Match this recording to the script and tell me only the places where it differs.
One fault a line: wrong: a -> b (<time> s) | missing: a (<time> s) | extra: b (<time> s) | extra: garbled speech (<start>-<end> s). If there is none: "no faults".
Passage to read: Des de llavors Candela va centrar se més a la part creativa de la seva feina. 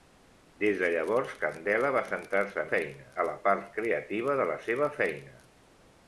wrong: més -> feina (2.7 s)